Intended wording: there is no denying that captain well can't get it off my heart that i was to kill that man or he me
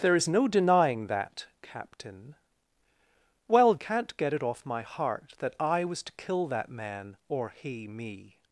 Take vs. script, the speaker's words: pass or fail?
pass